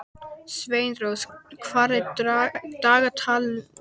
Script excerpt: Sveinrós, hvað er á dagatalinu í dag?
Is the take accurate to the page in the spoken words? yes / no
no